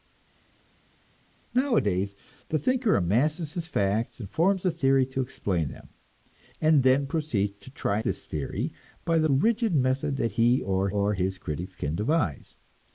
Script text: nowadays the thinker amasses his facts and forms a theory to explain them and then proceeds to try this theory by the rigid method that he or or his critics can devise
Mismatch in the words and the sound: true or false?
false